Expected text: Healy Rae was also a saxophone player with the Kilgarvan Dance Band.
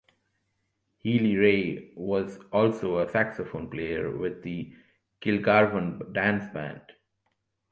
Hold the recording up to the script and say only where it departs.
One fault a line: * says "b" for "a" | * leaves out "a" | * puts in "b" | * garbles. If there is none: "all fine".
all fine